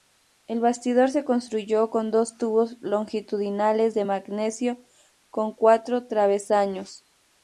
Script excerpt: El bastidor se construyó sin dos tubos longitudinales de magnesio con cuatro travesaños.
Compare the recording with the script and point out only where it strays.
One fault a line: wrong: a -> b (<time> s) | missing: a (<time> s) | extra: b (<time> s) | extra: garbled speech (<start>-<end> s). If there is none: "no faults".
wrong: sin -> con (1.9 s)